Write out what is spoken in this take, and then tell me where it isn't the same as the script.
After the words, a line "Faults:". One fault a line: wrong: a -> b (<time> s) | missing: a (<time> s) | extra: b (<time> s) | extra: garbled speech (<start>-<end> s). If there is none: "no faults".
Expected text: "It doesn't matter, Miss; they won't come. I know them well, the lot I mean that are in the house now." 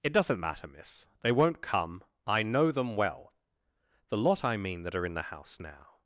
"It doesn't matter, Miss; they won't come. I know them well, the lot I mean that are in the house now."
Faults:
no faults